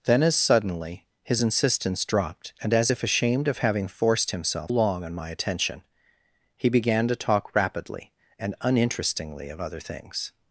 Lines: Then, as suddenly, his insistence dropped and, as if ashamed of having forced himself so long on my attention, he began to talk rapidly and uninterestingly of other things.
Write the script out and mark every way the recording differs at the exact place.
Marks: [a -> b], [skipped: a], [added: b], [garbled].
Then, as suddenly, his insistence dropped and, as if ashamed of having forced himself [skipped: so] long on my attention, he began to talk rapidly and uninterestingly of other things.